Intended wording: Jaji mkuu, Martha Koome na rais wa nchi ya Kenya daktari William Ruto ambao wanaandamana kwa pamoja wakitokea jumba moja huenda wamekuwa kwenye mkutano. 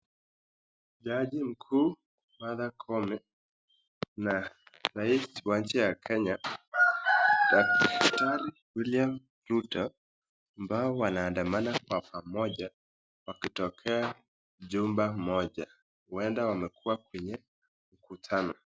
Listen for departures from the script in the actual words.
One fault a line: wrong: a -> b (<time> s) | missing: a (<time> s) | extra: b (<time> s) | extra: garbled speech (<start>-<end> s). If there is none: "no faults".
no faults